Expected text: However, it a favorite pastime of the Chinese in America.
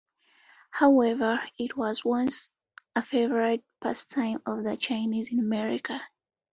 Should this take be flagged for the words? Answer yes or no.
yes